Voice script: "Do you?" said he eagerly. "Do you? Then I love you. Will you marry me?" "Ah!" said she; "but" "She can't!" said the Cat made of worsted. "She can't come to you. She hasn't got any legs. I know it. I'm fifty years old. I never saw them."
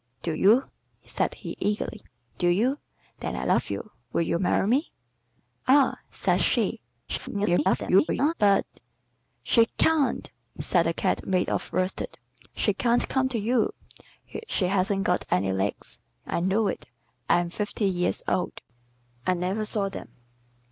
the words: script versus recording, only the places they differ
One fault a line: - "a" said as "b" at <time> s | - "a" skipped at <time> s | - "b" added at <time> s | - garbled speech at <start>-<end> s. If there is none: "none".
- garbled speech at 7.1-8.3 s